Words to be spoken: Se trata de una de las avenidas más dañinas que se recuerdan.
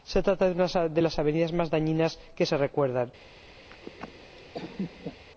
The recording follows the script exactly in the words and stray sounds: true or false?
false